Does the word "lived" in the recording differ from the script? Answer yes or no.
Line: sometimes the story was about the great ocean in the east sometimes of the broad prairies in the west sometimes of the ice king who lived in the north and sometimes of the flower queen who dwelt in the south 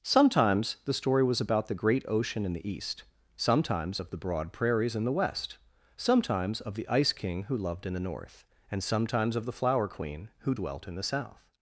yes